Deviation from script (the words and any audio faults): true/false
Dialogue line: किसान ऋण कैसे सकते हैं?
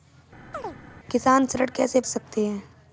true